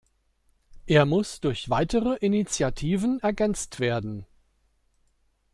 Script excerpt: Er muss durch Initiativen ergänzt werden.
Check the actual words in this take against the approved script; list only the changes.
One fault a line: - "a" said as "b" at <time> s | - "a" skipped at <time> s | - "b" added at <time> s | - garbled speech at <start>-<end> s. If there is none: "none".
- "weitere" added at 1.7 s